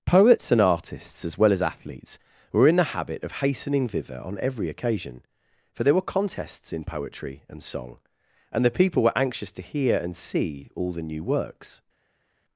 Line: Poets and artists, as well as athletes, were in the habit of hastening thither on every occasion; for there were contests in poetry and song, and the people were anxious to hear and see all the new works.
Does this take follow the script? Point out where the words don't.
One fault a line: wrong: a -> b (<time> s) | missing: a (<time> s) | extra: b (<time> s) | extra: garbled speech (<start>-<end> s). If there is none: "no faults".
no faults